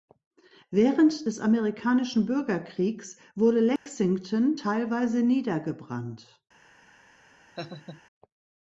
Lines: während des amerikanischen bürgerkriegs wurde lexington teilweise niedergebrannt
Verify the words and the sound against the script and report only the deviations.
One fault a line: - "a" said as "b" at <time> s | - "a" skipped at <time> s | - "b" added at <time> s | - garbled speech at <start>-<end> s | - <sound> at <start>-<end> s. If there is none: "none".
- dropout at 3.8-3.9 s
- laugh at 7.6-8.0 s